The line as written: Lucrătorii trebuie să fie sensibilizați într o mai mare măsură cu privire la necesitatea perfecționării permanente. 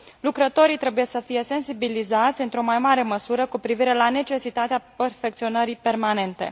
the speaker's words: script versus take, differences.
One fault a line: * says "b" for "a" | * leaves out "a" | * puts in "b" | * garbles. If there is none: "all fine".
all fine